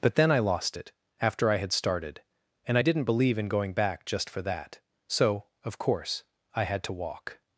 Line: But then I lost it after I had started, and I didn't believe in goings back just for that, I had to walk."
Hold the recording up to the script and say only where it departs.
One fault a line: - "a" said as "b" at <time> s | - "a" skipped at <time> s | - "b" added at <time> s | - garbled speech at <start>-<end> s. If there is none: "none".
- "goings" said as "going" at 3.5 s
- "so of course" added at 5.1 s